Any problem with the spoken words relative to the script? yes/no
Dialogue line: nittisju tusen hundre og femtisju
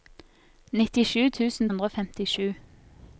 no